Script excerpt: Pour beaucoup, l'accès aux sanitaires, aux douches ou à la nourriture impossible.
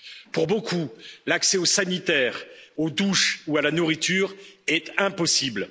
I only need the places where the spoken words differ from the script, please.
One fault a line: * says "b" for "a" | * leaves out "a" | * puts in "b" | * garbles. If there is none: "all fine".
* puts in "est"